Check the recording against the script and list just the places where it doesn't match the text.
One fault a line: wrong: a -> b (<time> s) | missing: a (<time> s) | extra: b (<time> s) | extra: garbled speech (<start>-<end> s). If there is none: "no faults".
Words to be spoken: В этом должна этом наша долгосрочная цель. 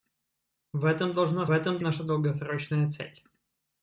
no faults